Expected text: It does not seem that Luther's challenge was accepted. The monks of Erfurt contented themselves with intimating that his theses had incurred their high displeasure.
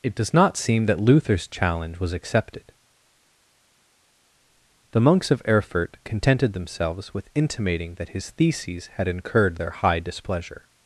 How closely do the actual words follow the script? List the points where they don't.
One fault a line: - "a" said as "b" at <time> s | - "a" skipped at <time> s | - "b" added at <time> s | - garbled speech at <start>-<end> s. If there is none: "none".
none